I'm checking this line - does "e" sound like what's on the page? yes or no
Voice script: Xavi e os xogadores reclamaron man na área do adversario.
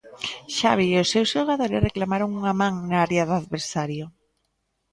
yes